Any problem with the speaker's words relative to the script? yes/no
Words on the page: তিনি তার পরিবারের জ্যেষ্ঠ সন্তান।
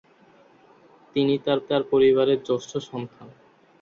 yes